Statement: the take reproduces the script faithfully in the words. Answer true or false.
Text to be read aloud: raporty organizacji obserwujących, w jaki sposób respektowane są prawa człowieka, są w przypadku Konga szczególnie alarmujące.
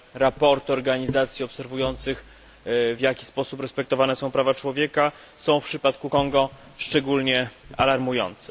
true